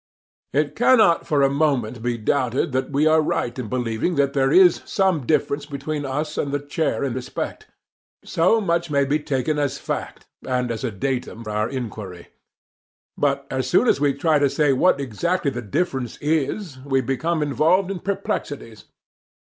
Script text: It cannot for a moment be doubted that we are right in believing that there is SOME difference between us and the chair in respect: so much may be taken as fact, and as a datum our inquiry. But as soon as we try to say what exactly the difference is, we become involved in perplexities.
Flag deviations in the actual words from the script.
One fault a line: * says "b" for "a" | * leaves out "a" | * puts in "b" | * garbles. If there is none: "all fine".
all fine